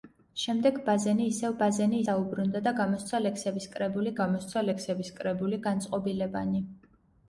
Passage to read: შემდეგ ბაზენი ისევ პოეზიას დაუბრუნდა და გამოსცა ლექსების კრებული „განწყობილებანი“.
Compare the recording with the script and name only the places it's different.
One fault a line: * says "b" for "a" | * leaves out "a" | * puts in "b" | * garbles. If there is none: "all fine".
* says "ბაზენი" for "პოეზიას"
* puts in "გამოსცა ლექსების კრებული"